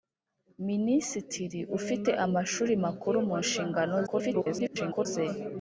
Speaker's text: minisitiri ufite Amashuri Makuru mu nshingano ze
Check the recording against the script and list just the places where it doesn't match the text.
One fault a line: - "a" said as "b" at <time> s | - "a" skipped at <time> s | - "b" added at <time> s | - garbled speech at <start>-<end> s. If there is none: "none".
- garbled speech at 4.1-5.1 s